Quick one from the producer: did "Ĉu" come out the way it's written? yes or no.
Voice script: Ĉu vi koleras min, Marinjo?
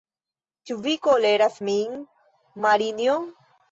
yes